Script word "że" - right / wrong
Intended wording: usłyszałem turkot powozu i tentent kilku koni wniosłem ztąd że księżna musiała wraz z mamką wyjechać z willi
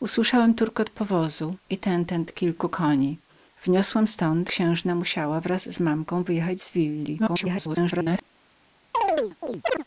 wrong